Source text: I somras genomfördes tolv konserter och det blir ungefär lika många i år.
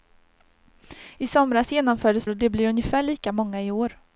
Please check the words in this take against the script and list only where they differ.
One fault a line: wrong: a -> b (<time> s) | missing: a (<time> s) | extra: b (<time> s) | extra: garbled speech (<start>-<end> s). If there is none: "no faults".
missing: tolv konserter (2.3 s)